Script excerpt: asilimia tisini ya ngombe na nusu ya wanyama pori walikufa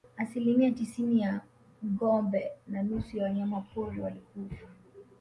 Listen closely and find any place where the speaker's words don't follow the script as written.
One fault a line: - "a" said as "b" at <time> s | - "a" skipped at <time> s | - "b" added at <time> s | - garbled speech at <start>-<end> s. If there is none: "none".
none